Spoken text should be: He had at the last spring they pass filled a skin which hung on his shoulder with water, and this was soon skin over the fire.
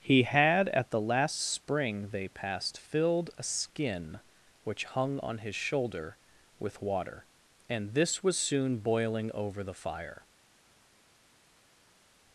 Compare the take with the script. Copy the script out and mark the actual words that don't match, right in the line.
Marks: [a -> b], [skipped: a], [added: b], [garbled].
He had at the last spring they [pass -> passed] filled a skin which hung on his shoulder with water, and this was soon [skin -> boiling] over the fire.